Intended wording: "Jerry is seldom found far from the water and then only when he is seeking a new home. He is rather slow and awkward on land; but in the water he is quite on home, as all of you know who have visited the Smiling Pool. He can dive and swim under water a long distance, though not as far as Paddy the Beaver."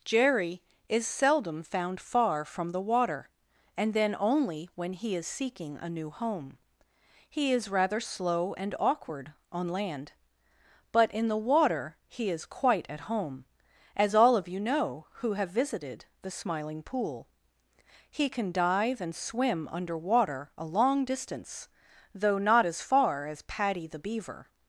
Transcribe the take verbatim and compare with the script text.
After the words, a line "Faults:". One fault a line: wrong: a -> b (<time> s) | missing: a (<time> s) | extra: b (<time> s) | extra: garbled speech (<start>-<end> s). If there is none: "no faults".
"Jerry is seldom found far from the water and then only when he is seeking a new home. He is rather slow and awkward on land; but in the water he is quite at home, as all of you know who have visited the Smiling Pool. He can dive and swim under water a long distance, though not as far as Paddy the Beaver."
Faults:
wrong: on -> at (12.9 s)